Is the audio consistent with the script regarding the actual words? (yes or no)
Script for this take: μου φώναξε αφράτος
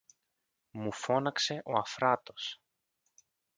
no